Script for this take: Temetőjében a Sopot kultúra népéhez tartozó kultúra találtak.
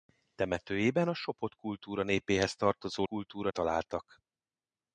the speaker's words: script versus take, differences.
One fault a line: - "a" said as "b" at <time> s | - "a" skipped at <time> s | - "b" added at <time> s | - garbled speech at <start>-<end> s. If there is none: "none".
none